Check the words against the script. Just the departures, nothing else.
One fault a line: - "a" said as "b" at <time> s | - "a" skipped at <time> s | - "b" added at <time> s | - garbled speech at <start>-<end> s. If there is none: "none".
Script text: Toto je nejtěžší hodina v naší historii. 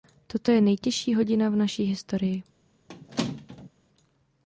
none